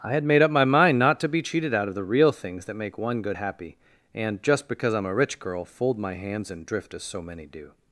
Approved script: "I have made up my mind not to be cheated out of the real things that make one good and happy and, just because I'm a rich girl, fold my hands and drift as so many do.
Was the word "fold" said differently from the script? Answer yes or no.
no